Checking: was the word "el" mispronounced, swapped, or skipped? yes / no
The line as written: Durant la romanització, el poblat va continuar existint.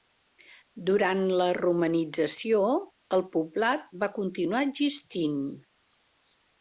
no